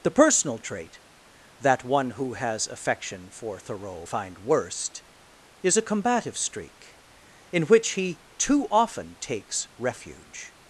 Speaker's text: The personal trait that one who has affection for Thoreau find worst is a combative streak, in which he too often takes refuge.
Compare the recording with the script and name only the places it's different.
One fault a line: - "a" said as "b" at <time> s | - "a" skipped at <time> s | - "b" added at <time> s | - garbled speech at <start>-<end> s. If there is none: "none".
none